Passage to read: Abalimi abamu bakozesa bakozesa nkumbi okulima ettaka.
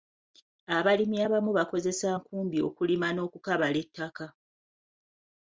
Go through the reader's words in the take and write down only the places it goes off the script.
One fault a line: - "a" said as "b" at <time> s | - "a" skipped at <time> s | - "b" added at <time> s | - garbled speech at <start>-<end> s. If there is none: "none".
- "bakozesa" skipped at 2.1 s
- "n'okukabala" added at 3.1 s